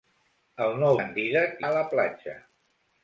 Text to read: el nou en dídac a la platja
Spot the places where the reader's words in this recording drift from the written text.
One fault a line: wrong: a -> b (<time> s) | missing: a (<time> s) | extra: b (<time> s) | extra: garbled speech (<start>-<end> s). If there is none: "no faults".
no faults